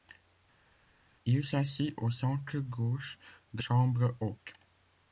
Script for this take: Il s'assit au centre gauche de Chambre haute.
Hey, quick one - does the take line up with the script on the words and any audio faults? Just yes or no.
yes